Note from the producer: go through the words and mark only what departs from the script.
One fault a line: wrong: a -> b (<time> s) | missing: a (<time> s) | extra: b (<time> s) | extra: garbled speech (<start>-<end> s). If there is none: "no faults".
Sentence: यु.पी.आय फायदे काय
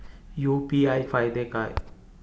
no faults